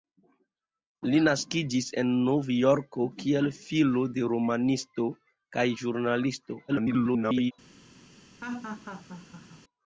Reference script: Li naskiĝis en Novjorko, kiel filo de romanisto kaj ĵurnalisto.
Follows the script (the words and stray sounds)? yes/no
no